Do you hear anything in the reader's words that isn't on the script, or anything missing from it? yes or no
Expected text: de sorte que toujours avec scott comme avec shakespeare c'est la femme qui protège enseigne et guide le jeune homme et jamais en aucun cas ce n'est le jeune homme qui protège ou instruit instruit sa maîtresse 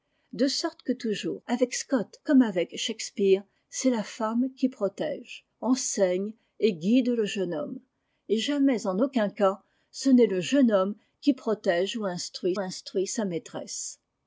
no